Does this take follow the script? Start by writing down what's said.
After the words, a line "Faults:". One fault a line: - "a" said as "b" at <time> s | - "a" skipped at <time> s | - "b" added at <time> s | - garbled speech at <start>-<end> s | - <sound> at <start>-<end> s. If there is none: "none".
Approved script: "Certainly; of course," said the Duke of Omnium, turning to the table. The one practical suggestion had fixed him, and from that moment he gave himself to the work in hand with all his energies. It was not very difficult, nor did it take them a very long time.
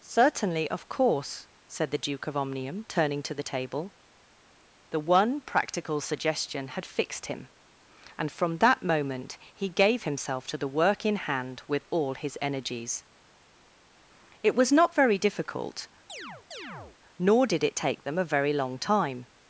"Certainly; of course," said the Duke of Omnium, turning to the table. The one practical suggestion had fixed him, and from that moment he gave himself to the work in hand with all his energies. It was not very difficult, nor did it take them a very long time.
Faults:
- chirp at 16.1-17.0 s